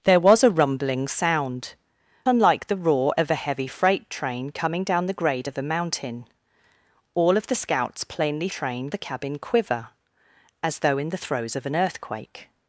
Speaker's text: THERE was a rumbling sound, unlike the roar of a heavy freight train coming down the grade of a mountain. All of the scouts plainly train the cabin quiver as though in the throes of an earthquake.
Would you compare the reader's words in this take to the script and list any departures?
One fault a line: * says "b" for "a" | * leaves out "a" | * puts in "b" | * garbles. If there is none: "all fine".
all fine